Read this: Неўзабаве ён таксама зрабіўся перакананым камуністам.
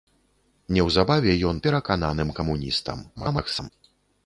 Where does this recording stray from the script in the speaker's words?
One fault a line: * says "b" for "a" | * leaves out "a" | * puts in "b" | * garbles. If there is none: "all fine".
* leaves out "таксама зрабіўся"
* garbles